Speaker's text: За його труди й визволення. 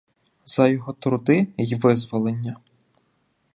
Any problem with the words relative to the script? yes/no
no